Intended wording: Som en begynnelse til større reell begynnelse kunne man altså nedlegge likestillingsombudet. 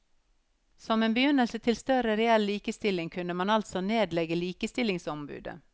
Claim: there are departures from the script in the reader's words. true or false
true